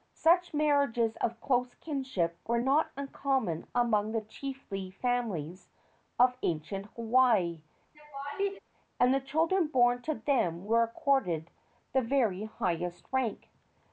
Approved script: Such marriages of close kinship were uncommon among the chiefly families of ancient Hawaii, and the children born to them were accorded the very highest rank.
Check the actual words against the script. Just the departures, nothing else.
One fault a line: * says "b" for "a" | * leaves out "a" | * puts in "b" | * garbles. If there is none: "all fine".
* puts in "not"